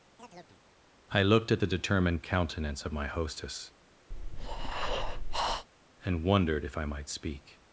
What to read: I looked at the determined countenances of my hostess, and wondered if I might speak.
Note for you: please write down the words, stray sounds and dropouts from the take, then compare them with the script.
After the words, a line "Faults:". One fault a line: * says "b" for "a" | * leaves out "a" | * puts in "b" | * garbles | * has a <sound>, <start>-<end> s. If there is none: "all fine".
I looked at the determined countenance of my hostess, and wondered if I might speak.
Faults:
* has a chirp, 0.2-0.6 s
* says "countenance" for "countenances"
* has a breath, 4.1-5.7 s